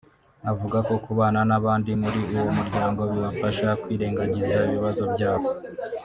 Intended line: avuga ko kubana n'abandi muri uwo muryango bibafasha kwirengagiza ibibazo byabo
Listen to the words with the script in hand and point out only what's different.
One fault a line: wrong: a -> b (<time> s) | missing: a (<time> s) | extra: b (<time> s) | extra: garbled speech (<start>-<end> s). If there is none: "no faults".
no faults